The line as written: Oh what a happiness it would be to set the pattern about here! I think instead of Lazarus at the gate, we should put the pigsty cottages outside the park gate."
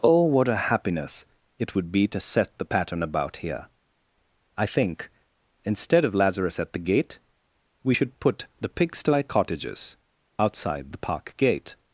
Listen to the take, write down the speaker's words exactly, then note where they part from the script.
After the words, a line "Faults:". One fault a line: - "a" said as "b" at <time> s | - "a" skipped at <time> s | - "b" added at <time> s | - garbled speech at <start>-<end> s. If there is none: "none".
Oh what a happiness it would be to set the pattern about here! I think instead of Lazarus at the gate, we should put the pigsty cottages outside the park gate."
Faults:
none